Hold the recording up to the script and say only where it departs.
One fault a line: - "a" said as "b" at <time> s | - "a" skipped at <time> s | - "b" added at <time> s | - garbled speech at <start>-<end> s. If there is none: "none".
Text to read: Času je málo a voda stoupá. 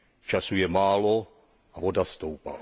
none